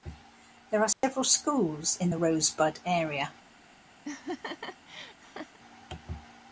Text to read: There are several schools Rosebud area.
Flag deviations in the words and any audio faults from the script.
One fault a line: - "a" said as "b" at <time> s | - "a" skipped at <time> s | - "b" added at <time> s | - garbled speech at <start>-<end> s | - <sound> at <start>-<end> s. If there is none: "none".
- dropout at 0.9-1.0 s
- "in the" added at 1.9 s
- laugh at 4.0-5.6 s